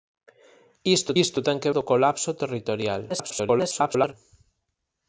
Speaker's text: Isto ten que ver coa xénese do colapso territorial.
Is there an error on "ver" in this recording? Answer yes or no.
yes